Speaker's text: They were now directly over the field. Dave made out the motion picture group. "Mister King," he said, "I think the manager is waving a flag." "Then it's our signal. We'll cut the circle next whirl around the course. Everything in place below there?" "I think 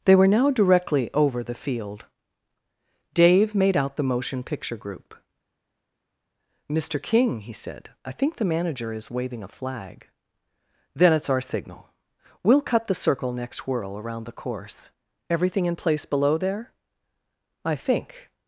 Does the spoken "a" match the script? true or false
true